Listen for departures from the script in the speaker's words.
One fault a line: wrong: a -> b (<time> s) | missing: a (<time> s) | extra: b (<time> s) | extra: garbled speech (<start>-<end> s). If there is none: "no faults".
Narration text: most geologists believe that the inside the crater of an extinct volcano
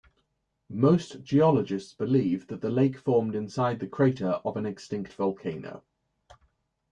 extra: lake formed (2.7 s)